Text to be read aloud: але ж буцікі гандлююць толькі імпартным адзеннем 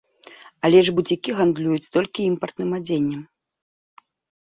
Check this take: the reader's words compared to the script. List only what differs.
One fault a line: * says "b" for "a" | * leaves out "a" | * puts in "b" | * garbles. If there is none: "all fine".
all fine